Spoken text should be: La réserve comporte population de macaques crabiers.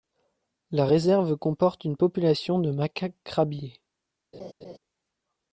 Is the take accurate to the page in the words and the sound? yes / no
no